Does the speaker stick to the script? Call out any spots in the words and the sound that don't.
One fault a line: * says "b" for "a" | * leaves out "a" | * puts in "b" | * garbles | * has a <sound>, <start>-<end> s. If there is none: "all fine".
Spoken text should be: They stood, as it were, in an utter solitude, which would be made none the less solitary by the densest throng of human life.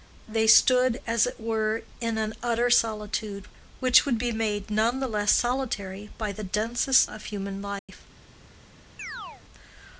* leaves out "throng"
* has a dropout, 7.8-7.9 s
* has a chirp, 9.0-9.4 s